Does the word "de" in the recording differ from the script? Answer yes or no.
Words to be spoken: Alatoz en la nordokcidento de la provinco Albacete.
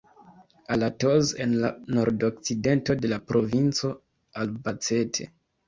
no